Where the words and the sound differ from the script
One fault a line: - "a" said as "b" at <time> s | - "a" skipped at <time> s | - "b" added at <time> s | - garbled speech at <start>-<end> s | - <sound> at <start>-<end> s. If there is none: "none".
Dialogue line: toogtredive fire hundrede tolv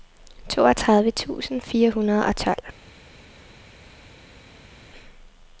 - "tusind" added at 1.1 s
- "og" added at 2.2 s